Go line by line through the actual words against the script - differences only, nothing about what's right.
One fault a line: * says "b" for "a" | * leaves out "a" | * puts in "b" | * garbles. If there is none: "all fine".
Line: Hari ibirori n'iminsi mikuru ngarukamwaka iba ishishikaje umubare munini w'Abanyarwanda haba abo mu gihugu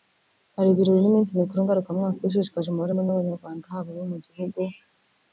all fine